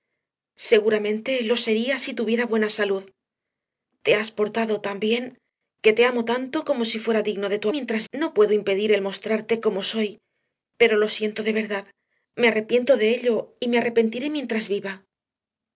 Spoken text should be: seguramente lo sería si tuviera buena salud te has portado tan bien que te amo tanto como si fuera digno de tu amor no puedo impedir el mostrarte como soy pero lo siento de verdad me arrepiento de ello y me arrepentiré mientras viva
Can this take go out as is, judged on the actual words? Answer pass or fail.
fail